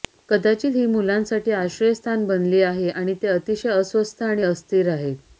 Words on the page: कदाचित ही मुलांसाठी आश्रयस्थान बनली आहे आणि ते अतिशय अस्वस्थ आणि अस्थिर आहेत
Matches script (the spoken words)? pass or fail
pass